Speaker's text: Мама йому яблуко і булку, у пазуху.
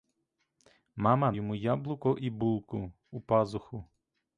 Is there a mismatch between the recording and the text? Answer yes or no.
no